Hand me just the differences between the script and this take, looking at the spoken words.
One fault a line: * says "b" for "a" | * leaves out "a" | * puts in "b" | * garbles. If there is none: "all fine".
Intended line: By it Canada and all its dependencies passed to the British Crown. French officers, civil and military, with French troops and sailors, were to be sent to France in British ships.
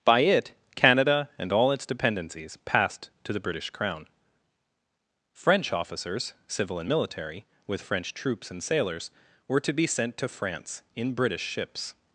all fine